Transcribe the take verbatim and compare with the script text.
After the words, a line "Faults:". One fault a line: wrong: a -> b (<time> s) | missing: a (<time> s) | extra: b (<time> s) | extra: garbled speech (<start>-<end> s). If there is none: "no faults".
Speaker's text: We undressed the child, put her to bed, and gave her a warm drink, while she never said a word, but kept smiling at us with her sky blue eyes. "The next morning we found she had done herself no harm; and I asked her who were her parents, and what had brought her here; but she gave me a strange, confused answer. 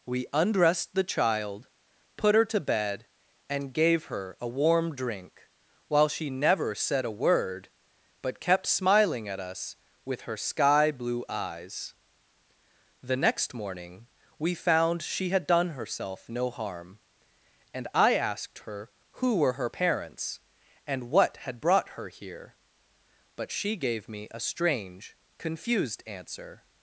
We undressed the child, put her to bed, and gave her a warm drink, while she never said a word, but kept smiling at us with her sky blue eyes. "The next morning we found she had done herself no harm; and I asked her who were her parents, and what had brought her here; but she gave me a strange, confused answer.
Faults:
no faults